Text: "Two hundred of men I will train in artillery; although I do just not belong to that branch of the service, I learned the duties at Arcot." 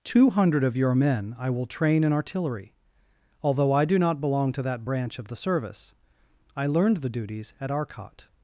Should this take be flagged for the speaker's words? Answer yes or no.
yes